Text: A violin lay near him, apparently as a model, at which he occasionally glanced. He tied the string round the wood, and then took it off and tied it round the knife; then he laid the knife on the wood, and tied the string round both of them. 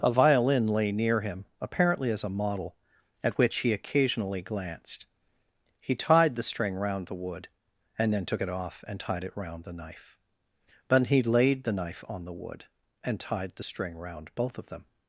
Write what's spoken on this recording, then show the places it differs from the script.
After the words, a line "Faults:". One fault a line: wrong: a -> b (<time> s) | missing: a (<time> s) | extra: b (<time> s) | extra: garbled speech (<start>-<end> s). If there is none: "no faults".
A violin lay near him, apparently as a model, at which he occasionally glanced. He tied the string round the wood, and then took it off and tied it round the knife; but he laid the knife on the wood, and tied the string round both of them.
Faults:
wrong: then -> but (10.9 s)